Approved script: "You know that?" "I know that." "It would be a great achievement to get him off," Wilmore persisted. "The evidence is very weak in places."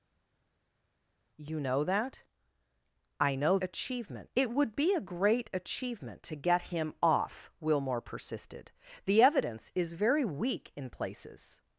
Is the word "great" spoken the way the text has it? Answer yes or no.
yes